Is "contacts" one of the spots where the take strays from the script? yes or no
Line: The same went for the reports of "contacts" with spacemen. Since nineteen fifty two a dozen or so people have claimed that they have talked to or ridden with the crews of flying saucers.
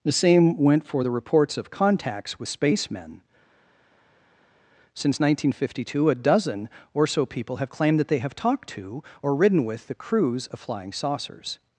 no